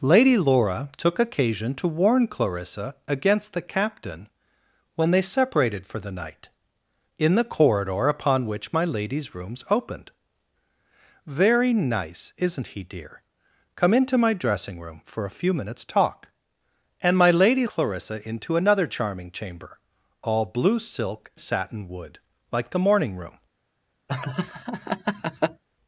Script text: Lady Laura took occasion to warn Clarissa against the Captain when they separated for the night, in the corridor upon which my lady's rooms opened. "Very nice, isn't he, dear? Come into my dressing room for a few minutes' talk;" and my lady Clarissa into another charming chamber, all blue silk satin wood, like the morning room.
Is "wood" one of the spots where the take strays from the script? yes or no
no